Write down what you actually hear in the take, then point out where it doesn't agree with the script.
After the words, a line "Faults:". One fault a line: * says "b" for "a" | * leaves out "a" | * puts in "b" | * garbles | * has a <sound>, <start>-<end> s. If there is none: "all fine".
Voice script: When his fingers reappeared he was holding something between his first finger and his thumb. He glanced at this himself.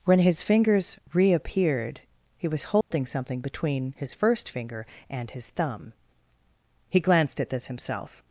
When his fingers reappeared he was holding something between his first finger and his thumb. He glanced at this himself.
Faults:
* has a dropout, 2.8-2.9 s